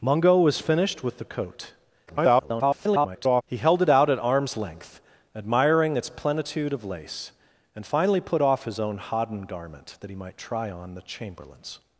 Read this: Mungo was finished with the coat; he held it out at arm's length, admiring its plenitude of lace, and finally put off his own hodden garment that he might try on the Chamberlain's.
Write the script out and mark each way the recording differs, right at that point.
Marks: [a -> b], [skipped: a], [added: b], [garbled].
Mungo was finished with the coat; [garbled] he held it out at arm's length, admiring its plenitude of lace, and finally put off his own hodden garment that he might try on the Chamberlain's.